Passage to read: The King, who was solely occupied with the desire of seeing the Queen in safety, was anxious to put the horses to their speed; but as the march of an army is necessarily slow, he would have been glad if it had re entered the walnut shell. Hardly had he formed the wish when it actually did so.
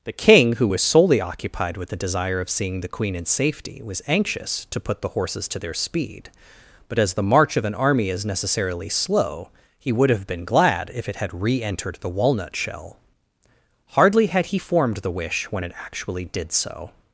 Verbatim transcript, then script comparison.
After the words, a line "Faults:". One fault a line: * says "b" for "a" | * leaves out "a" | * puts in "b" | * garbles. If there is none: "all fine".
The King, who was solely occupied with the desire of seeing the Queen in safety, was anxious to put the horses to their speed; but as the march of an army is necessarily slow, he would have been glad if it had re entered the walnut shell. Hardly had he formed the wish when it actually did so.
Faults:
all fine